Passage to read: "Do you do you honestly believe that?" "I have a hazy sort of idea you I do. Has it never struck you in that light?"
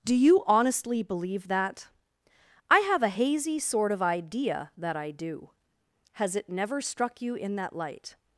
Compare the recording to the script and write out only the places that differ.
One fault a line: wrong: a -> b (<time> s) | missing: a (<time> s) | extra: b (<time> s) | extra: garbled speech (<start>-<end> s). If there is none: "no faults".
missing: do you (0.4 s)
wrong: you -> that (4.8 s)